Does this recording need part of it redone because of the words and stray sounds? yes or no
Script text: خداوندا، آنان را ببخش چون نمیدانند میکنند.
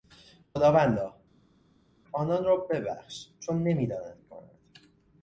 no